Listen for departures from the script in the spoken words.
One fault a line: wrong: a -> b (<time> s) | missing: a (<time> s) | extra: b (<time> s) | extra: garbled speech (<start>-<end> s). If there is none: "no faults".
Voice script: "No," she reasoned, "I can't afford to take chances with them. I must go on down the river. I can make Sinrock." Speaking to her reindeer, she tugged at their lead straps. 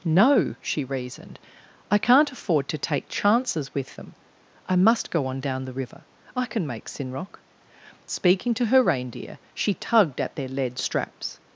no faults